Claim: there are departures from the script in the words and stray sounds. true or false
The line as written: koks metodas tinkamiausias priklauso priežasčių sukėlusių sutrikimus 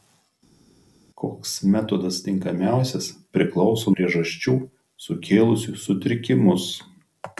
false